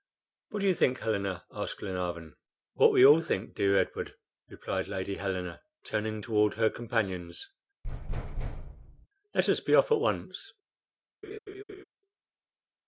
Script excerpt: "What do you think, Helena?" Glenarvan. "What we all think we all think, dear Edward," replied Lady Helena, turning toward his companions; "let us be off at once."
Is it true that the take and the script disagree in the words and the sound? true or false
true